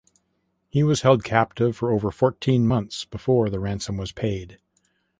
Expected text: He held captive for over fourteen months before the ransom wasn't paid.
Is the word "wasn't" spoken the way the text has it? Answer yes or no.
no